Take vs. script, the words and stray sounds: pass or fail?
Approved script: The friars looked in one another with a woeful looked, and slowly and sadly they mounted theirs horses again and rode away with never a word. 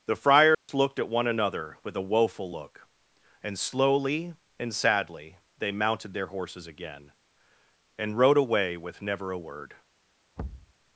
fail